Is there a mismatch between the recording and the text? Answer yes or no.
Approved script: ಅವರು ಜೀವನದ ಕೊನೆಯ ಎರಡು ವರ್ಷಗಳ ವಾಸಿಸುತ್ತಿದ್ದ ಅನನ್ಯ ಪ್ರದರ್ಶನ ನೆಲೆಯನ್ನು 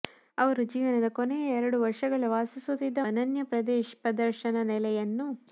no